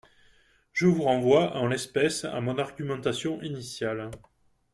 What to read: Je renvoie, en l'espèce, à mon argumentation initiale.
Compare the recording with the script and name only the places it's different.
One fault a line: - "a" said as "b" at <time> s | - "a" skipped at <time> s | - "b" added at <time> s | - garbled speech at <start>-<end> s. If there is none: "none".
- "vous" added at 0.9 s